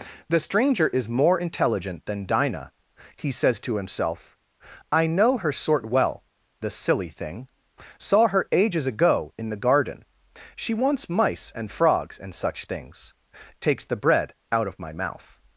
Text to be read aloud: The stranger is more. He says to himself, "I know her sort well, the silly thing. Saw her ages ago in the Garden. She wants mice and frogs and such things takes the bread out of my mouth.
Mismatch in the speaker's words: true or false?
true